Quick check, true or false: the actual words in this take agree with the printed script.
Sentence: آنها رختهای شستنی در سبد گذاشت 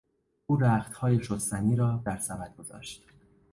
false